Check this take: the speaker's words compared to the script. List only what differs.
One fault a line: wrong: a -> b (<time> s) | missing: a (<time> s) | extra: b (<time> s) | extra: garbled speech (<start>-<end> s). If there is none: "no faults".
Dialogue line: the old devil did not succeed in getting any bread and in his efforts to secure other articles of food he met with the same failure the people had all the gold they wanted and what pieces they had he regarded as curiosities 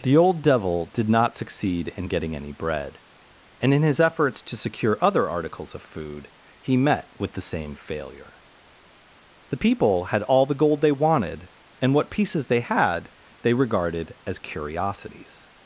wrong: he -> they (13.4 s)